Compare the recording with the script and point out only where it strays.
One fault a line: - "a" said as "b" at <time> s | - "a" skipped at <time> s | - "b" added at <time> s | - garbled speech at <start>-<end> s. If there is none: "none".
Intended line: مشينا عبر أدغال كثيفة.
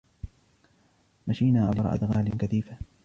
none